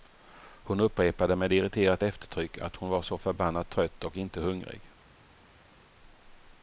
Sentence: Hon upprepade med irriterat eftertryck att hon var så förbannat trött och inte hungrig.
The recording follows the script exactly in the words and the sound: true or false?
true